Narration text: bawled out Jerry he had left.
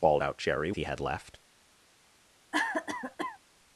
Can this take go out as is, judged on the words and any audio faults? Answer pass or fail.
fail